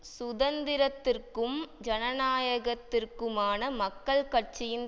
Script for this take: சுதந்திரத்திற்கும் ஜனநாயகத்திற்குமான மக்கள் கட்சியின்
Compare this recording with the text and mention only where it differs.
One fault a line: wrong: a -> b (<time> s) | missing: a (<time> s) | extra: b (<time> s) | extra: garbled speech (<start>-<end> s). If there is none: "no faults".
no faults